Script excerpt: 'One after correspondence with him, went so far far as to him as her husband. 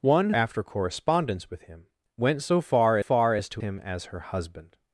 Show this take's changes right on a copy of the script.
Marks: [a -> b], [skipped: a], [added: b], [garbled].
'One after correspondence with him, went so far far as to him as her husband.